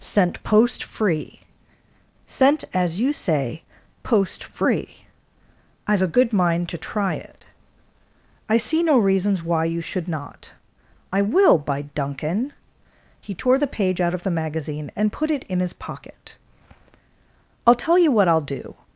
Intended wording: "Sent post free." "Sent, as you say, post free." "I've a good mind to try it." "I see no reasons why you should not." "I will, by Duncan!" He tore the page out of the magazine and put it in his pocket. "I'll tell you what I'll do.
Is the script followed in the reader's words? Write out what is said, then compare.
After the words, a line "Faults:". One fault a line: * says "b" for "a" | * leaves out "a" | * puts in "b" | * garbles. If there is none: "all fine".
"Sent post free." "Sent, as you say, post free." "I've a good mind to try it." "I see no reasons why you should not." "I will, by Duncan!" He tore the page out of the magazine and put it in his pocket. "I'll tell you what I'll do.
Faults:
all fine